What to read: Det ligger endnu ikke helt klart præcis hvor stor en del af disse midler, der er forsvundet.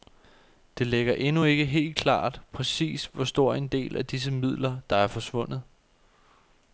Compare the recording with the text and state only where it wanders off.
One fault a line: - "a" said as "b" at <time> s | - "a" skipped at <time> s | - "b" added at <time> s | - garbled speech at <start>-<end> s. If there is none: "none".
none